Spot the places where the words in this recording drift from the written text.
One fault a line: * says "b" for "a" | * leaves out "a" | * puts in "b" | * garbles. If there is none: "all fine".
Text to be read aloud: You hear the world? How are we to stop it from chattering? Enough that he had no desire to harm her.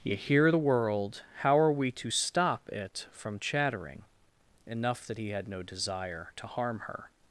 all fine